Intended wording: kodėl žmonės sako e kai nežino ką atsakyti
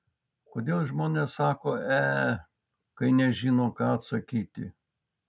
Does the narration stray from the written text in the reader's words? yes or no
no